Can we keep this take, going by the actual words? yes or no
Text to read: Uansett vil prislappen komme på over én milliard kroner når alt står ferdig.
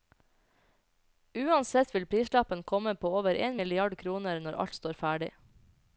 yes